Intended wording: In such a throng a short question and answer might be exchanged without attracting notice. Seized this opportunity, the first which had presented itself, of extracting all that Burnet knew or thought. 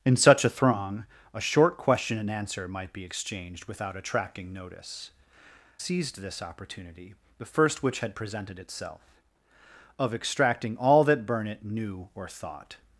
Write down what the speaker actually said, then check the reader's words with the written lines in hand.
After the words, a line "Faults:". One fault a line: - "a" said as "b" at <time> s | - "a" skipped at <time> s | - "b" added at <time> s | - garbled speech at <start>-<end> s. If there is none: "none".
In such a throng a short question and answer might be exchanged without attracting notice. Seized this opportunity, the first which had presented itself, of extracting all that Burnet knew or thought.
Faults:
none